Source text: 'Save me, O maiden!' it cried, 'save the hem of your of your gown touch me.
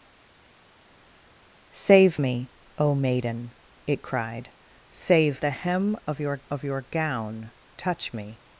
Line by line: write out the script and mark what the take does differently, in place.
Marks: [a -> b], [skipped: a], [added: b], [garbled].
'Save me, O maiden!' it cried, 'save the hem of your of your gown touch me.